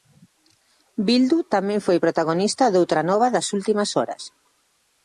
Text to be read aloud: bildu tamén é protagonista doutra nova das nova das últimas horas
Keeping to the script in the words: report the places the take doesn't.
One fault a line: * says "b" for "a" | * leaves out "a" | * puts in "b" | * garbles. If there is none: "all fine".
* says "foi" for "é"
* leaves out "nova das"